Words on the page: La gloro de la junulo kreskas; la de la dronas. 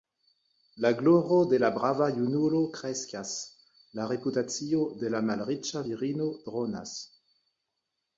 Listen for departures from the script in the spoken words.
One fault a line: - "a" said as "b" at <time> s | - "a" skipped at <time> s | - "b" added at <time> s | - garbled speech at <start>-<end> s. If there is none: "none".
- "brava" added at 1.8 s
- "reputacio" added at 4.1 s
- "malriĉa virino" added at 5.3 s